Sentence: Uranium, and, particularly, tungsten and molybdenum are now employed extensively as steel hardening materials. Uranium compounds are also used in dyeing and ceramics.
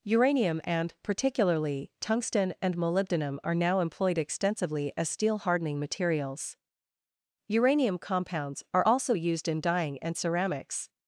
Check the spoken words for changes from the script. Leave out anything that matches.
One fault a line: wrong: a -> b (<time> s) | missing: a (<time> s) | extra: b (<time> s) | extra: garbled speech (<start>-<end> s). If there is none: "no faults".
no faults